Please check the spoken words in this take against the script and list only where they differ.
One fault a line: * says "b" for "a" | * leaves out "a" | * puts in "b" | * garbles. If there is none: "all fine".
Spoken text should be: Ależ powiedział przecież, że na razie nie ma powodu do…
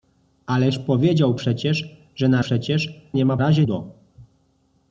* says "przecież" for "razie"
* says "razie" for "powodu"